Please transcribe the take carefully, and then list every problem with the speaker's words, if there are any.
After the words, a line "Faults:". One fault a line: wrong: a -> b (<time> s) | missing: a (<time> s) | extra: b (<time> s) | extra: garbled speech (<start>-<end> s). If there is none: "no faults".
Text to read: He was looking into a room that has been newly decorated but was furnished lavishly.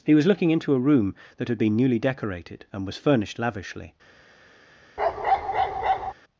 He was looking into a room that had been newly decorated and was furnished lavishly.
Faults:
wrong: has -> had (1.5 s)
wrong: but -> and (2.7 s)